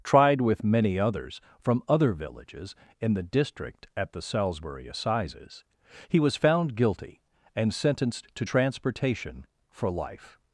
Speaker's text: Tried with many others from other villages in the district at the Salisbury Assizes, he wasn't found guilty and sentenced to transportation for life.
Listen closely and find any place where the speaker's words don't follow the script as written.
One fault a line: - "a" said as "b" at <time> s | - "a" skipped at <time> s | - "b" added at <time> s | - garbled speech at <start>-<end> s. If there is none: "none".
- "wasn't" said as "was" at 6.2 s